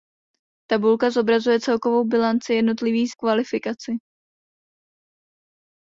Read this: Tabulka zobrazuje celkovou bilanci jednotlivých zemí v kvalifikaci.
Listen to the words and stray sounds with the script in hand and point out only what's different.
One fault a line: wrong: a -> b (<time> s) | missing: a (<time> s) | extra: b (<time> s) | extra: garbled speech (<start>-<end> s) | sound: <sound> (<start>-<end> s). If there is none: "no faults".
missing: zemí (3.1 s)